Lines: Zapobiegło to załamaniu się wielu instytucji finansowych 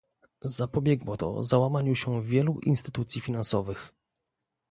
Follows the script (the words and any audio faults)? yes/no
yes